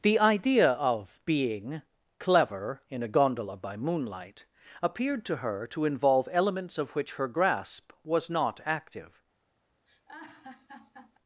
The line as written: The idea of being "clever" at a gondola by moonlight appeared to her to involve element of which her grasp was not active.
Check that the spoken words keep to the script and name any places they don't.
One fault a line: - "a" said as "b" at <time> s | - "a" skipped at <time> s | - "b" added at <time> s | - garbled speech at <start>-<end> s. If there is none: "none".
- "at" said as "in" at 2.9 s
- "element" said as "elements" at 6.3 s